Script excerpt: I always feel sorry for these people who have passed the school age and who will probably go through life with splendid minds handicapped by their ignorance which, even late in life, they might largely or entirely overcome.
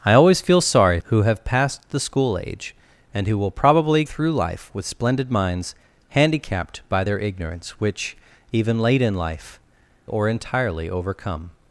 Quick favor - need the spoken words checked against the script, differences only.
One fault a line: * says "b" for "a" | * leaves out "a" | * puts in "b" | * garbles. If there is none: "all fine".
* leaves out "for these people"
* leaves out "go"
* leaves out "they might largely"